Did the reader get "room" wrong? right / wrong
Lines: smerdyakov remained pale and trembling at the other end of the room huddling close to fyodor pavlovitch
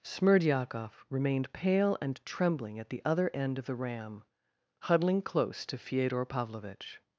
wrong